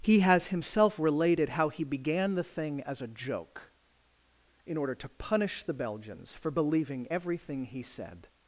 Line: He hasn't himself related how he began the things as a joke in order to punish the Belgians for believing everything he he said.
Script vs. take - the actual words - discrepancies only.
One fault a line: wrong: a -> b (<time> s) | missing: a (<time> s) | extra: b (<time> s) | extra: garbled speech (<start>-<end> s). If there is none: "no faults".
wrong: hasn't -> has (0.2 s)
wrong: things -> thing (2.4 s)
missing: he (7.8 s)